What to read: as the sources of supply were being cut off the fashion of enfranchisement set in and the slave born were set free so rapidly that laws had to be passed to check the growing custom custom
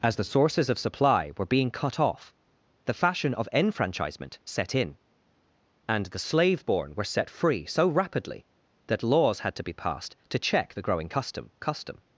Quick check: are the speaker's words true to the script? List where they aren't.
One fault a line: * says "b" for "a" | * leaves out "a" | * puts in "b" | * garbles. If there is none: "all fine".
all fine